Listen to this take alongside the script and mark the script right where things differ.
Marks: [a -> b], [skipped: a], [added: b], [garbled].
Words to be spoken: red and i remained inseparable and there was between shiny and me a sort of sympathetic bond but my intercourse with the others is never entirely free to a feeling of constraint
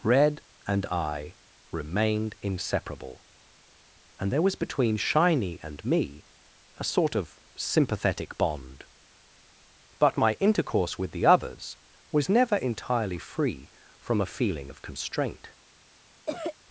red and i remained inseparable and there was between shiny and me a sort of sympathetic bond but my intercourse with the others [is -> was] never entirely free [to -> from] a feeling of constraint